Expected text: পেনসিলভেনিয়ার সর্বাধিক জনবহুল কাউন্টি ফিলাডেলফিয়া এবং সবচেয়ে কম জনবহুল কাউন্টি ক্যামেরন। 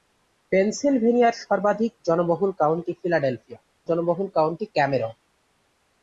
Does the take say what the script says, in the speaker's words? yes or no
no